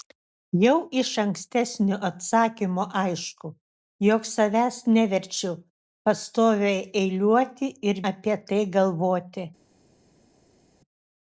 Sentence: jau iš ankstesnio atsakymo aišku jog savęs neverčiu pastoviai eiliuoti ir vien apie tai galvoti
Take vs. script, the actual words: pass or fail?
fail